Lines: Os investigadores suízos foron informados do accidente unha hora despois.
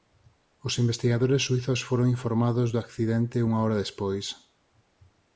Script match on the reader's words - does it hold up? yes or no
yes